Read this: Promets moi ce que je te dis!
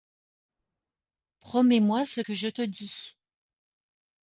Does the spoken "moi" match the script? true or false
true